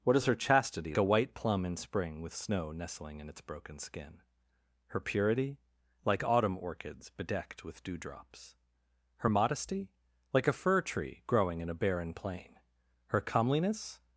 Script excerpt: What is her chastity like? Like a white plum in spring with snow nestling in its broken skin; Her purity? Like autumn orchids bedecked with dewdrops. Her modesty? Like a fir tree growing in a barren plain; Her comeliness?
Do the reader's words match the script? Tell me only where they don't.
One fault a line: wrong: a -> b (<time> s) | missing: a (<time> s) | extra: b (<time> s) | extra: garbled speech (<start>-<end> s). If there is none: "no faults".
missing: like Like (0.9 s)